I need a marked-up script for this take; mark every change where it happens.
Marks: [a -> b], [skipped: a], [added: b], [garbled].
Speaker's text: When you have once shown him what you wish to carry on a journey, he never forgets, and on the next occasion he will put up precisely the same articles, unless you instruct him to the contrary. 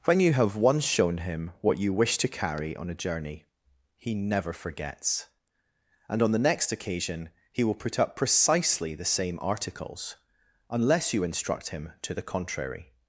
When you have once shown him what you wish to carry on a journey, he never forgets, and on the next occasion he will put up precisely the same articles, unless you instruct him to the contrary.